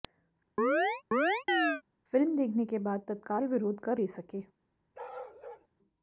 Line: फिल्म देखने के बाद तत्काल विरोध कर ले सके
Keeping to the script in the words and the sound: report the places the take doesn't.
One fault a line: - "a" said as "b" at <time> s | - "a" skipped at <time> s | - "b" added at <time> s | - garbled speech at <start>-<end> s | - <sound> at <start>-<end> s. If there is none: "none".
- chirp at 0.6-1.8 s
- bark at 4.9-5.7 s